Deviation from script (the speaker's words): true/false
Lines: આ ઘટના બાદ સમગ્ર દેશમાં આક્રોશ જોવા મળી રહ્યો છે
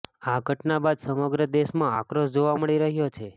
false